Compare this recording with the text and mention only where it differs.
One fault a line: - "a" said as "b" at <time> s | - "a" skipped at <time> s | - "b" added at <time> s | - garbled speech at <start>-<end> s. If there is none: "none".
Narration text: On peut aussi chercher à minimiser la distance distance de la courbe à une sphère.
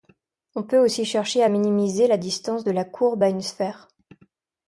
- "distance" skipped at 2.6 s